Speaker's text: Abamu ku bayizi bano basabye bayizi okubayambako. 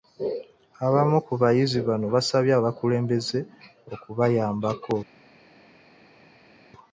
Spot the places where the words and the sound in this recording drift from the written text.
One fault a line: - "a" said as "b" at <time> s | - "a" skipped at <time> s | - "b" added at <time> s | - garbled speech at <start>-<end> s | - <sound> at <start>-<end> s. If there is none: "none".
- "bayizi" said as "abakulembeze" at 2.6 s